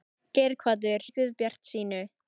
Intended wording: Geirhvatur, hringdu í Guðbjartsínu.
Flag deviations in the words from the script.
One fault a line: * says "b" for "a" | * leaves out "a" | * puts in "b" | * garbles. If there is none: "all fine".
* leaves out "hringdu"